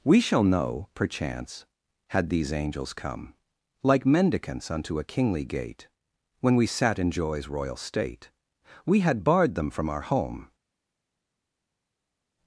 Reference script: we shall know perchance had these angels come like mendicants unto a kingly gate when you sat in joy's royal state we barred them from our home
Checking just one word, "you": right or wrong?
wrong